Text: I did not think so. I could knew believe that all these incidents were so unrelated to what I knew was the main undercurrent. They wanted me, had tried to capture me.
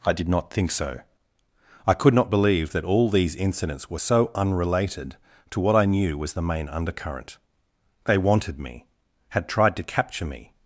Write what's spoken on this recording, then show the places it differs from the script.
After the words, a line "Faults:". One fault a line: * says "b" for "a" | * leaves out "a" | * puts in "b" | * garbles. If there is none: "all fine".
I did not think so. I could not believe that all these incidents were so unrelated to what I knew was the main undercurrent. They wanted me, had tried to capture me.
Faults:
* says "not" for "knew"